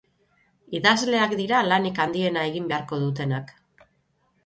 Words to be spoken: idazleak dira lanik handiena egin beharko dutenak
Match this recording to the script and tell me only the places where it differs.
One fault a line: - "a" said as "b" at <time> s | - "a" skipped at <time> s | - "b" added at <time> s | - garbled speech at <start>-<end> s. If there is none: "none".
none